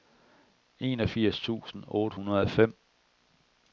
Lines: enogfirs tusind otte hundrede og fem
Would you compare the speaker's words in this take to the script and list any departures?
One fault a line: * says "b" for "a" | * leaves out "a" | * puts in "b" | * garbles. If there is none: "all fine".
all fine